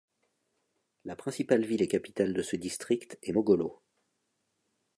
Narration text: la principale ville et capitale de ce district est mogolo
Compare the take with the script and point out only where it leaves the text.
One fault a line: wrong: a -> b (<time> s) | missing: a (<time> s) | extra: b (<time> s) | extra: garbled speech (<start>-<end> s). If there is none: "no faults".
no faults